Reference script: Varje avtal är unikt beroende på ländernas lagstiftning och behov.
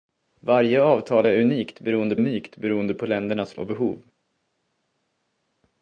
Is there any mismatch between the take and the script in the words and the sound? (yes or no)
yes